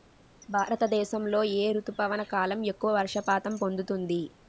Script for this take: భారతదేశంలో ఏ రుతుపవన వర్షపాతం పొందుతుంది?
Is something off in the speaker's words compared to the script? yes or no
yes